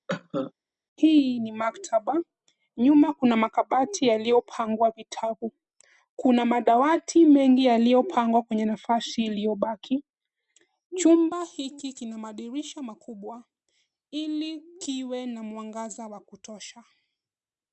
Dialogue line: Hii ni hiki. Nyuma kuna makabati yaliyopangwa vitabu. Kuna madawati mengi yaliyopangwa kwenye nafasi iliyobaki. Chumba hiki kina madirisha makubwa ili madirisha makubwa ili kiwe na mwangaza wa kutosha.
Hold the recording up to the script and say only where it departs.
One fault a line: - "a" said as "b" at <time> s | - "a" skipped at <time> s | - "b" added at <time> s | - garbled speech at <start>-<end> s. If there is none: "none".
- "hiki" said as "maktaba" at 1.5 s
- "madirisha makubwa ili" skipped at 14.6 s